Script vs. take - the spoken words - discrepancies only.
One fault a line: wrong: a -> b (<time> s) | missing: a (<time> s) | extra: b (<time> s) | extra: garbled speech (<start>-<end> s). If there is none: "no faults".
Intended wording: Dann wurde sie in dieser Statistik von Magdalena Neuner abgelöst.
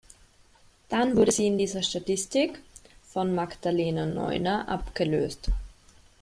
no faults